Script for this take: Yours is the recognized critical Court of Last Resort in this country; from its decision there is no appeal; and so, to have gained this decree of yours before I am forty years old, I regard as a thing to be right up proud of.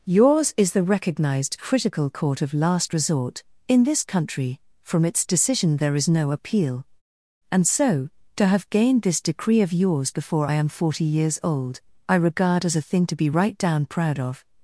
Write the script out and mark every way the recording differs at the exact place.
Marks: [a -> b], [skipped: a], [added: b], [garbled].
Yours is the recognized critical Court of Last Resort in this country; from its decision there is no appeal; and so, to have gained this decree of yours before I am forty years old, I regard as a thing to be right [up -> down] proud of.